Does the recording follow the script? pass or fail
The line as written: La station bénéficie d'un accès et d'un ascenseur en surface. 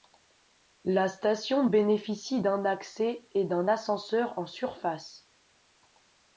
pass